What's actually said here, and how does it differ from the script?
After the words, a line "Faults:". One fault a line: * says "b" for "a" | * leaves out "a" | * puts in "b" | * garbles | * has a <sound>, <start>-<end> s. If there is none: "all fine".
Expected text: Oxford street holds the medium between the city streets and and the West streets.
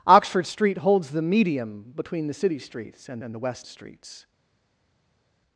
Oxford street holds the medium between the city streets and and the West streets.
Faults:
all fine